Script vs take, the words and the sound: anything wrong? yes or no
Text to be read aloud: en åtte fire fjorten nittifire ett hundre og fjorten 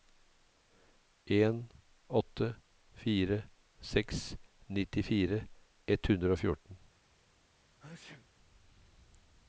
yes